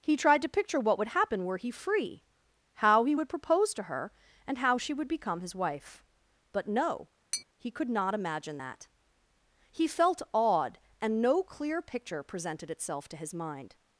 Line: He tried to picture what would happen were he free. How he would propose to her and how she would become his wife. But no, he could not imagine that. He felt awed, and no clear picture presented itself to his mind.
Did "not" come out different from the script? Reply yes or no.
no